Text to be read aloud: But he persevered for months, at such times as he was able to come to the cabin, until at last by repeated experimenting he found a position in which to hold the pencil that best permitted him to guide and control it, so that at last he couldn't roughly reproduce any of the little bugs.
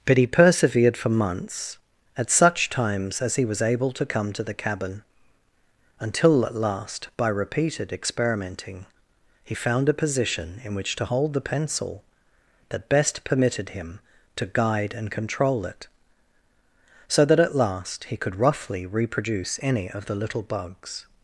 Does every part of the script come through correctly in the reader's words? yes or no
no